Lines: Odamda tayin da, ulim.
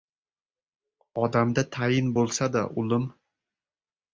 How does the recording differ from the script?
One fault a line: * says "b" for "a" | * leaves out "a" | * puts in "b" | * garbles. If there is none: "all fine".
* puts in "bo‘lsa"